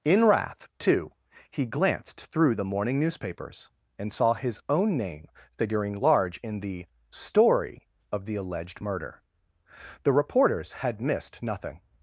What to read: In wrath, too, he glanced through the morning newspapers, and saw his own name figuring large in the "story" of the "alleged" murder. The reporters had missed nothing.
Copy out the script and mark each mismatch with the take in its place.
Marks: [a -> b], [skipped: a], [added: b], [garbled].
In wrath, too, he glanced through the morning newspapers, and saw his own name figuring large in the "story" of the "alleged" murder. The reporters had missed nothing.